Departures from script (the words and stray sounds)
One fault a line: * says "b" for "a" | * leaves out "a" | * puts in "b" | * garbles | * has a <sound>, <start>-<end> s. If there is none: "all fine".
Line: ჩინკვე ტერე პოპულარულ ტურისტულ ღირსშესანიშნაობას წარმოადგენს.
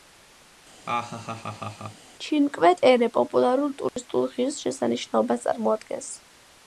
* has a laugh, 0.9-2.1 s
* has a dropout, 3.9-4.0 s